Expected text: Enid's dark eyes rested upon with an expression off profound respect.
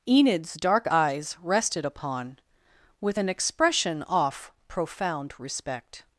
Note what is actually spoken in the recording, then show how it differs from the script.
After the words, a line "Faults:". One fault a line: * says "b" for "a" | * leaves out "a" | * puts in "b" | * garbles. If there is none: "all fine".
Enid's dark eyes rested upon with an expression off profound respect.
Faults:
all fine